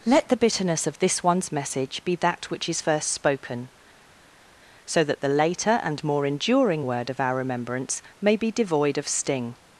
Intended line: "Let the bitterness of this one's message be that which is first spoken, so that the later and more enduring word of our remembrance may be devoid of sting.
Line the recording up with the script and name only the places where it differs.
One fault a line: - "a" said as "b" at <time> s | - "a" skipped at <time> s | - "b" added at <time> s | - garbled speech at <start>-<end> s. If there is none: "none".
none